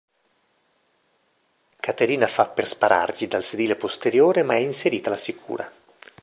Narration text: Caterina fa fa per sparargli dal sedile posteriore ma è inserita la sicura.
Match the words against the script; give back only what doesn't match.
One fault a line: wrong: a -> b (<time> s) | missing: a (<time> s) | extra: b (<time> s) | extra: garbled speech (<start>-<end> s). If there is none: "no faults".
missing: fa (2.5 s)